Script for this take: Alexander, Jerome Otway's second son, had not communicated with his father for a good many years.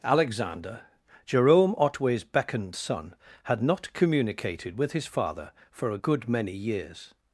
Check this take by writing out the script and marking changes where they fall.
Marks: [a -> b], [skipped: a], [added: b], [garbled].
Alexander, Jerome Otway's [second -> beckoned] son, had not communicated with his father for a good many years.